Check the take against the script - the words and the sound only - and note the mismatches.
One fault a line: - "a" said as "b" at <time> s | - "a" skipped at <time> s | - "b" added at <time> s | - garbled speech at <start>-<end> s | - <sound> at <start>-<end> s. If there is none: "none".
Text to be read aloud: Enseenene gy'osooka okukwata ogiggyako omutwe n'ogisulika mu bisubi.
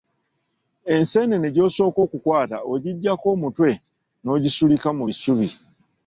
none